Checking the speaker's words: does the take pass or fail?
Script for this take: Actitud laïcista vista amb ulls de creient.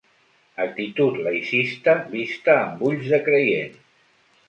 pass